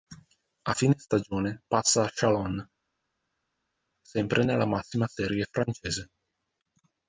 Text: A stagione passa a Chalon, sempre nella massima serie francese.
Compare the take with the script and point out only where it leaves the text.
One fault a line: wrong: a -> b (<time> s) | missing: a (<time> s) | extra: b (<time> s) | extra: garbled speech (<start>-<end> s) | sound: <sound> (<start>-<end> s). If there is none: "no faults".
extra: fine (0.7 s)